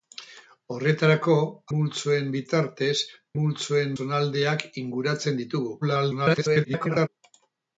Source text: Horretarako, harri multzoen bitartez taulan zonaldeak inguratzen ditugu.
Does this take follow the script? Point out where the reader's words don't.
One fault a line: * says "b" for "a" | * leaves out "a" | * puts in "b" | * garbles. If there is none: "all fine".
* leaves out "harri"
* says "multzoen" for "taulan"
* garbles